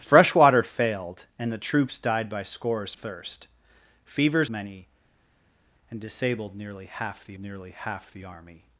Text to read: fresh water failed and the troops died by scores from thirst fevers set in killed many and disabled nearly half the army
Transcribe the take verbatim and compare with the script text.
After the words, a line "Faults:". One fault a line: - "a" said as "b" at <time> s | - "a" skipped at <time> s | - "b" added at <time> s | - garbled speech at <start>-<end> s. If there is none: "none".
fresh water failed and the troops died by scores thirst fevers many and disabled nearly half the nearly half the army
Faults:
- "from" skipped at 2.9 s
- "set in killed many and disabled" said as "many and disabled nearly half the" at 4.5 s